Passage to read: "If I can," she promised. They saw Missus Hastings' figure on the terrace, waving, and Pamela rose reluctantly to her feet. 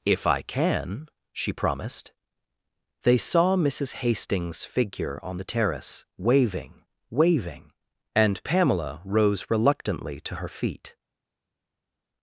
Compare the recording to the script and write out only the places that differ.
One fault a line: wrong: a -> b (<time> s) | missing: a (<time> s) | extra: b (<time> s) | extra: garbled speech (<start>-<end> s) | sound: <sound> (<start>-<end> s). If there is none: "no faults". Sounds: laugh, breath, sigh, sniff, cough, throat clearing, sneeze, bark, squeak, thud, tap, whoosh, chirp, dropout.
extra: waving (7.1 s)